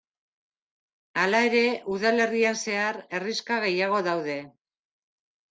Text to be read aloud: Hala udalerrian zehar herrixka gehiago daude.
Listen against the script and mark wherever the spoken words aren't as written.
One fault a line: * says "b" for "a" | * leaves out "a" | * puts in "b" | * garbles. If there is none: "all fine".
* puts in "ere"